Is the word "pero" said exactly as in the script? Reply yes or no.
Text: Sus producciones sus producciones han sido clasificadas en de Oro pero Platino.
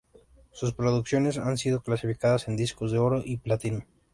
no